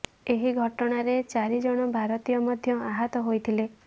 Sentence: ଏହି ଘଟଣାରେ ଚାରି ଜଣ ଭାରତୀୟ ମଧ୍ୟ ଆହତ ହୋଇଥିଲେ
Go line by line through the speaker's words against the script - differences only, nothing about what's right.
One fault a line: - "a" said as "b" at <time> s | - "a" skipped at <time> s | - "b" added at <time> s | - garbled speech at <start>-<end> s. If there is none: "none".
none